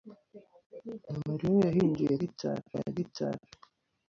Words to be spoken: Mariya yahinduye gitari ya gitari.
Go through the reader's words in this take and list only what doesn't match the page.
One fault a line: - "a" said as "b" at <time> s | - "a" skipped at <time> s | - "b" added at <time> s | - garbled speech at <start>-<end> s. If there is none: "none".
none